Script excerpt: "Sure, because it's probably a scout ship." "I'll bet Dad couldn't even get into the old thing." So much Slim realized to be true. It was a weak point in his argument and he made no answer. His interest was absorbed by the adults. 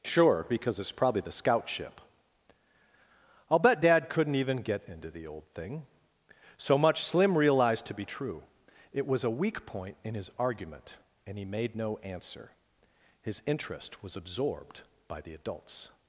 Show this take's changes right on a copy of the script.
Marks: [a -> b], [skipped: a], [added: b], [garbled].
"Sure, because it's probably [a -> the] scout ship." "I'll bet Dad couldn't even get into the old thing." So much Slim realized to be true. It was a weak point in his argument and he made no answer. His interest was absorbed by the adults.